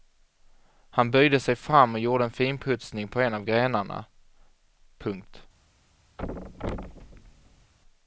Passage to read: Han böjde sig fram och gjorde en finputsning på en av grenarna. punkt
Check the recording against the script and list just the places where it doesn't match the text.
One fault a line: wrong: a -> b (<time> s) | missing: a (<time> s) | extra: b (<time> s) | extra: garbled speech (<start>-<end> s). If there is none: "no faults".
no faults